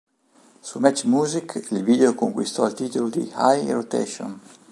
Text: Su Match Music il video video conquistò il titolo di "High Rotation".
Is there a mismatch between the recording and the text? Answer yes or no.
yes